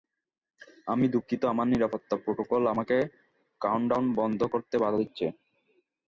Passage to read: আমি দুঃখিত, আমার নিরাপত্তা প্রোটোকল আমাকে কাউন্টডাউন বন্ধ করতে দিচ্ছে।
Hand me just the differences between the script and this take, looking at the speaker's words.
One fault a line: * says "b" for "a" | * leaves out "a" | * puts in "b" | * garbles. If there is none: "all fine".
* puts in "বাধা"